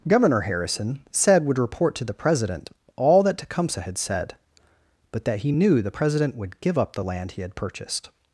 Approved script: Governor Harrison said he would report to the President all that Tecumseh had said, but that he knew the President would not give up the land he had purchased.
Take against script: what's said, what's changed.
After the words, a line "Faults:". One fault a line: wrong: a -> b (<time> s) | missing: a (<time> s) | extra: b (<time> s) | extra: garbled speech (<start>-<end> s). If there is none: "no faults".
Governor Harrison said would report to the President all that Tecumseh had said, but that he knew the President would give up the land he had purchased.
Faults:
missing: he (1.4 s)
missing: not (6.6 s)